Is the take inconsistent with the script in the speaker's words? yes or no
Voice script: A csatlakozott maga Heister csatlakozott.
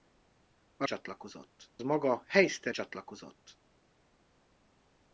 no